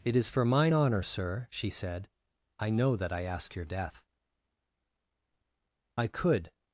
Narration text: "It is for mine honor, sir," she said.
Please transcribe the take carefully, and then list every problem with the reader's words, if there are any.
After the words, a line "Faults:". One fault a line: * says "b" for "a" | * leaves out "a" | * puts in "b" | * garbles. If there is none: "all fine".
"It is for mine honor, sir," she said. "I know that I ask your death." I could
Faults:
* puts in "I know that I ask your death I could"